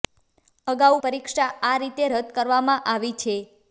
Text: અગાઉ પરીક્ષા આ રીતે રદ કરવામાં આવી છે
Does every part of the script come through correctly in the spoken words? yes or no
yes